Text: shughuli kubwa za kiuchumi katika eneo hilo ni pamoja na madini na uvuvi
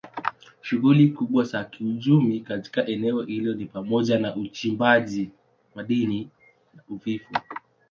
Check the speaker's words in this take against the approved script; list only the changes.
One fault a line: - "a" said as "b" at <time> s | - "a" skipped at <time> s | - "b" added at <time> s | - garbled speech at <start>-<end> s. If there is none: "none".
- "uchimbaji" added at 4.4 s